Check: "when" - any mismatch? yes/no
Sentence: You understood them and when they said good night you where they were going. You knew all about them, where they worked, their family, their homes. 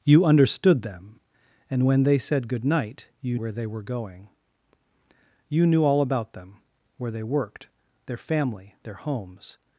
no